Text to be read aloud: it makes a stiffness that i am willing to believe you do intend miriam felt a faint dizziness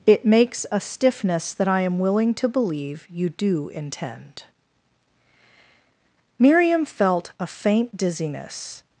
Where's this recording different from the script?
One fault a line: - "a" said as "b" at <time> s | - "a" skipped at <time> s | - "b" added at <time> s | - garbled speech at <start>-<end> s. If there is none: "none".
none